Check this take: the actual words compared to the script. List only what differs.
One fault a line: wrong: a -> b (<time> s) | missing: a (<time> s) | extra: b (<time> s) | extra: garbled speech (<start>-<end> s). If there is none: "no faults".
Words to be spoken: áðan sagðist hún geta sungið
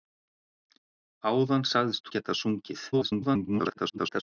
missing: hún (2.1 s)
extra: garbled speech (2.9-4.2 s)